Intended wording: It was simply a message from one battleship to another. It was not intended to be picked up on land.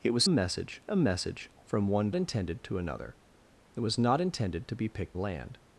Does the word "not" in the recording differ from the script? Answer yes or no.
no